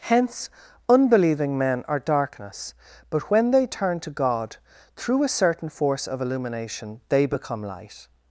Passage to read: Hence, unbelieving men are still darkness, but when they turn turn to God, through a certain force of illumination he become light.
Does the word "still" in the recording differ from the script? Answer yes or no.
yes